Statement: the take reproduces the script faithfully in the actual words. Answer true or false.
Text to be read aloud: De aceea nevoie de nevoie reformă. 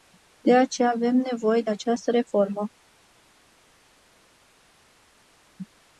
false